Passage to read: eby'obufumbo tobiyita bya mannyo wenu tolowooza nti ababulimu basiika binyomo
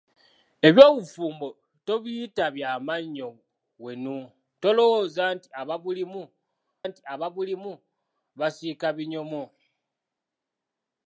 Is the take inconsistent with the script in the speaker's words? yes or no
yes